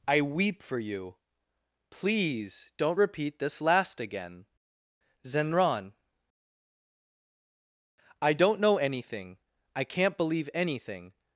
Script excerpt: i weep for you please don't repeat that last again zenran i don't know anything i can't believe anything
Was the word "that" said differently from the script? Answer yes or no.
yes